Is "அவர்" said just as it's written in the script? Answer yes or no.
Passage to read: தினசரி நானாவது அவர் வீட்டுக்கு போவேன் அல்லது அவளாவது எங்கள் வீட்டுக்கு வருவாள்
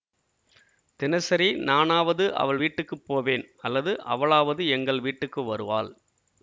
no